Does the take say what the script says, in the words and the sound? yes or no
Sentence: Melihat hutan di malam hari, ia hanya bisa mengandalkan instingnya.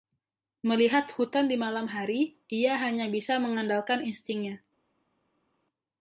yes